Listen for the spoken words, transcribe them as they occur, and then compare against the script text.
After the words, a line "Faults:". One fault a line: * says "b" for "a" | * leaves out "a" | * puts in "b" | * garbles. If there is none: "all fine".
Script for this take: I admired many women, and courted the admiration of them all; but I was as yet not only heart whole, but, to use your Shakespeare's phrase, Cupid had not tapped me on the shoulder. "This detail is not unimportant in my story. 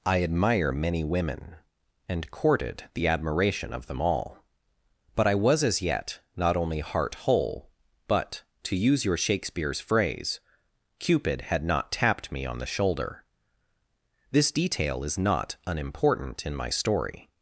I admire many women, and courted the admiration of them all; but I was as yet not only heart whole, but, to use your Shakespeare's phrase, Cupid had not tapped me on the shoulder. "This detail is not unimportant in my story.
Faults:
* says "admire" for "admired"